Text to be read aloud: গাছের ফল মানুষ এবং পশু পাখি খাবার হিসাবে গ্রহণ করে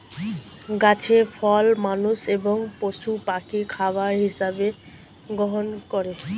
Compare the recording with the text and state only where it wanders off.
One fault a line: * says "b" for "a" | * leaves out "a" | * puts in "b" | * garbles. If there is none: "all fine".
all fine